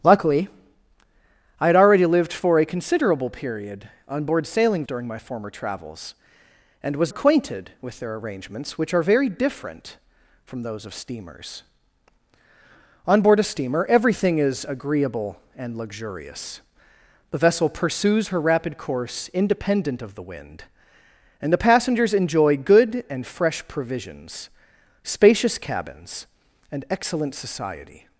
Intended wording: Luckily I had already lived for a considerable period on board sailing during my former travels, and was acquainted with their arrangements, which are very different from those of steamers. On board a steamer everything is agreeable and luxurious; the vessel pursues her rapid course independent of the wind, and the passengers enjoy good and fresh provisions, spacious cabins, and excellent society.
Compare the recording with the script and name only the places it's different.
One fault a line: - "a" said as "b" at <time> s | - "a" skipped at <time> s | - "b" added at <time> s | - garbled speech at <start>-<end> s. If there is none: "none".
none